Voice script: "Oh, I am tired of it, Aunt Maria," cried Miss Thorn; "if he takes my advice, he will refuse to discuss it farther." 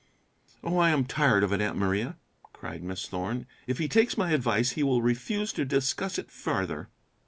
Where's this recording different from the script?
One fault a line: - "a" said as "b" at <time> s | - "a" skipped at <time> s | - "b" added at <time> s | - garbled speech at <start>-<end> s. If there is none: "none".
none